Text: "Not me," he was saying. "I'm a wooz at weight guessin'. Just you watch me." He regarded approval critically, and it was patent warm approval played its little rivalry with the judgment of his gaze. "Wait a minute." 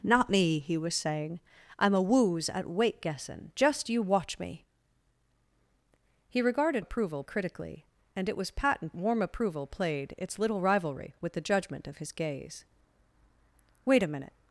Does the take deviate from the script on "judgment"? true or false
false